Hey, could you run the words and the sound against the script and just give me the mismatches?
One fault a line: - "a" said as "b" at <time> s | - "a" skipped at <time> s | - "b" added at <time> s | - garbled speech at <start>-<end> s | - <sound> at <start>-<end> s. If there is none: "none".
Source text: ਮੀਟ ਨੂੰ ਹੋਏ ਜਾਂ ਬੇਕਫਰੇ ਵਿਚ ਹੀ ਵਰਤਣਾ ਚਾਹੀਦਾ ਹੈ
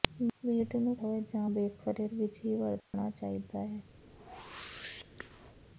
- dropout at 2.8-2.9 s
- whoosh at 4.0-5.6 s